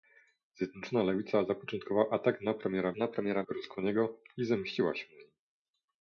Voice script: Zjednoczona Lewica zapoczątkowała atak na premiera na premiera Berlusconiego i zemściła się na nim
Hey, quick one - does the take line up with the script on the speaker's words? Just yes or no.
yes